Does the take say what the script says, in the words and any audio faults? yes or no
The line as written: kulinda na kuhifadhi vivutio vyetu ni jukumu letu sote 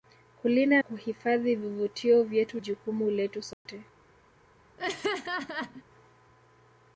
no